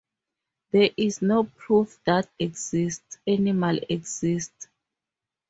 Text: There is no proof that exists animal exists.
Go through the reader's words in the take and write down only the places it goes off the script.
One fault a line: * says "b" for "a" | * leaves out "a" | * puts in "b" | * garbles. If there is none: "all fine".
all fine